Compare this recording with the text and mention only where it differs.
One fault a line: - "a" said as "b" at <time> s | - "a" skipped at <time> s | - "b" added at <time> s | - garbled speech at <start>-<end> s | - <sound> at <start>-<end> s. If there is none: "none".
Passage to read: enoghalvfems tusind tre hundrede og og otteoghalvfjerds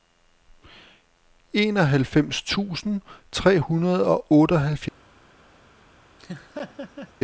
- "og" skipped at 4.3 s
- laugh at 6.2-7.1 s